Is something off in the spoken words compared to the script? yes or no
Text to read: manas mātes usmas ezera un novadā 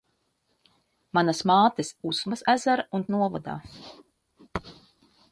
no